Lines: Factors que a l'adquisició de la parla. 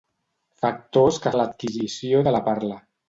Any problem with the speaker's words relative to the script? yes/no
no